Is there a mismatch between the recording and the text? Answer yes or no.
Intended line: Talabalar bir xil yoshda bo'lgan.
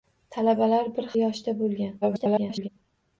yes